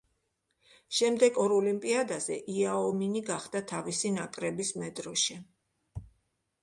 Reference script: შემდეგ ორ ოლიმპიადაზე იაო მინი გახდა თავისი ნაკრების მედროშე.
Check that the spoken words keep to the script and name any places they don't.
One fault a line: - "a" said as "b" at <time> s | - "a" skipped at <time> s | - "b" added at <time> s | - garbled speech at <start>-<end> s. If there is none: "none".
none